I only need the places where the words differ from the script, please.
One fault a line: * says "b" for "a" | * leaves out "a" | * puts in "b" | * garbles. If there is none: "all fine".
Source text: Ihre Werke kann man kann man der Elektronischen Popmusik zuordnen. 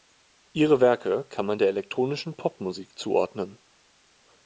* leaves out "kann man"